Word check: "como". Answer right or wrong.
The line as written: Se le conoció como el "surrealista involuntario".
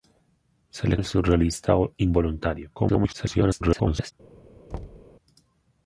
wrong